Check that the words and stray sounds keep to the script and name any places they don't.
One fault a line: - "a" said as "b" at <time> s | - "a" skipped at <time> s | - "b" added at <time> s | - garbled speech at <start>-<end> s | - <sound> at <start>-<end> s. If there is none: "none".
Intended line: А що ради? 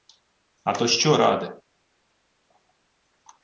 - "то" added at 0.7 s